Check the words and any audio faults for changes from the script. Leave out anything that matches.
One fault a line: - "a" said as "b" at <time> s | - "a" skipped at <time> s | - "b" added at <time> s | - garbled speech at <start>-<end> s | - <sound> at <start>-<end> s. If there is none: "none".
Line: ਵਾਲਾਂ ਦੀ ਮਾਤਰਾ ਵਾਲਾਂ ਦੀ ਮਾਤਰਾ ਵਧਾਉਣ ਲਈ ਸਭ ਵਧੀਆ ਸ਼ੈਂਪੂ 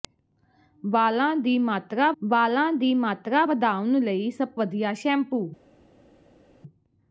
none